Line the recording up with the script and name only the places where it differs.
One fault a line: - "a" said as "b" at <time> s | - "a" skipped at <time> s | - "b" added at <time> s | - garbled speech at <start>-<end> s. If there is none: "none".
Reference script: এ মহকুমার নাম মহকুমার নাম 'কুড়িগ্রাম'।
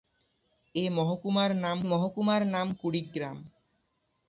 none